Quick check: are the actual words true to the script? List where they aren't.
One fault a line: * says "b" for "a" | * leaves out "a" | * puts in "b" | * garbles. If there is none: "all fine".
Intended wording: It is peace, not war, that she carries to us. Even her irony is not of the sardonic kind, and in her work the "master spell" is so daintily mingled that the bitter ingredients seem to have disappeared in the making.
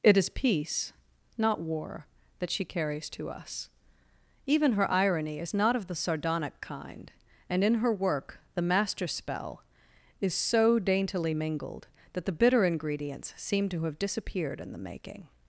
all fine